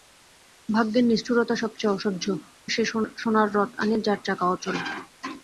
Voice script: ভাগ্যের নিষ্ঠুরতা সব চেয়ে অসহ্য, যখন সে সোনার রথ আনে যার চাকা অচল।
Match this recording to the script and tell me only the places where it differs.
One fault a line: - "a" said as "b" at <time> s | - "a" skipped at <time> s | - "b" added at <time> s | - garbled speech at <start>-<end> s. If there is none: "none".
- "যখন" skipped at 2.2 s